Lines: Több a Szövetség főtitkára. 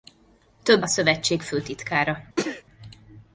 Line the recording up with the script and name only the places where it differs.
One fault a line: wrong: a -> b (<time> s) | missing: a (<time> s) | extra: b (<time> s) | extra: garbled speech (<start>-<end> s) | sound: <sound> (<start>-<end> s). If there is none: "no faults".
sound: sneeze (2.4-2.6 s)